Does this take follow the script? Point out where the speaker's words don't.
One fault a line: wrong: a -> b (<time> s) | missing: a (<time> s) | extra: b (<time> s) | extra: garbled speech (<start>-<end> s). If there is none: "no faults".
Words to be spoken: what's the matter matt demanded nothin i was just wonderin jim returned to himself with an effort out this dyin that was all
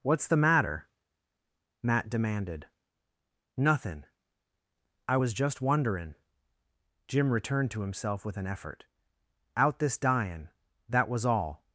no faults